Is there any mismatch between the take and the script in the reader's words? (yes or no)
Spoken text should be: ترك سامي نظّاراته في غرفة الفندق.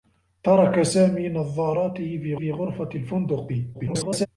yes